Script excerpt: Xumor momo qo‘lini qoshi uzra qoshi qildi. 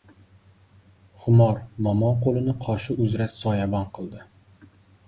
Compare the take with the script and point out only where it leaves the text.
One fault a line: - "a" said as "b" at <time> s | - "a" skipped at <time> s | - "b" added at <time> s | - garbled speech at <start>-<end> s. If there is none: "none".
- "qoshi" said as "soyabon" at 3.4 s